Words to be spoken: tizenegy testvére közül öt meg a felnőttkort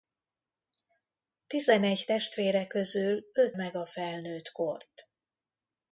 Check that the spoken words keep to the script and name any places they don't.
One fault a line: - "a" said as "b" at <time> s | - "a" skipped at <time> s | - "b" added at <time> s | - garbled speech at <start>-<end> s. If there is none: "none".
none